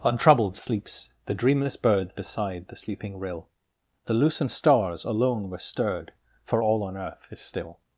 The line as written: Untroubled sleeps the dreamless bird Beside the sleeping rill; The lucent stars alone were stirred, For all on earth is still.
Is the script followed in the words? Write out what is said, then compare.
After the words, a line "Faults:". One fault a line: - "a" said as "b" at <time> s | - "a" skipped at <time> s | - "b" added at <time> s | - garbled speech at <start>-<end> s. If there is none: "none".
Untroubled sleeps the dreamless bird Beside the sleeping rill; The lucent stars alone were stirred, For all on earth is still.
Faults:
none